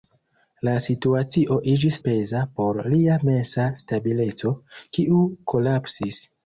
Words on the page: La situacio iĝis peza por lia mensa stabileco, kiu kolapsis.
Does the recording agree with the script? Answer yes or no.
yes